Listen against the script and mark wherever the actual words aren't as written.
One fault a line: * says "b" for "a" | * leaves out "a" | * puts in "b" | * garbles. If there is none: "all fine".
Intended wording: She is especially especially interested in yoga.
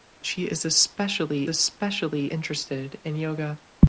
all fine